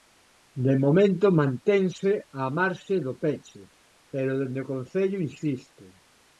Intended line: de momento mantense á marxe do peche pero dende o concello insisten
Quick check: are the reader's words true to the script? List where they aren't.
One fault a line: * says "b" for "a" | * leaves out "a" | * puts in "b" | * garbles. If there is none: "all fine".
all fine